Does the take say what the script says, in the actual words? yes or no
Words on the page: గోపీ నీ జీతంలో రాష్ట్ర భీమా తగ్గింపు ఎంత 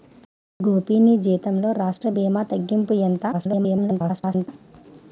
no